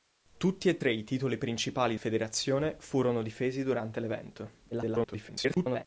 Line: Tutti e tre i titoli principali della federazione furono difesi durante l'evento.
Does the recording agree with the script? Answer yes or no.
no